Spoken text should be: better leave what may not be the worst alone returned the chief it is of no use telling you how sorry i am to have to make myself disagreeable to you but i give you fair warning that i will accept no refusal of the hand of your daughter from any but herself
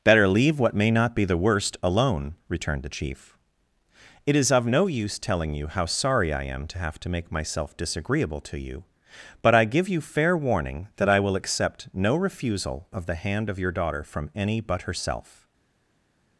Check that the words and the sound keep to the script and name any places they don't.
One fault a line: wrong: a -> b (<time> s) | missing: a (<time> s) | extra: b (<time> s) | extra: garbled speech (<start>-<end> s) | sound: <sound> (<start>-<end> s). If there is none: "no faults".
no faults